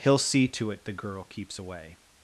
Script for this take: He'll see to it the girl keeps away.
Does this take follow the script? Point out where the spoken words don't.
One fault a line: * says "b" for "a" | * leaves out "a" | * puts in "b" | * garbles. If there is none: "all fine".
all fine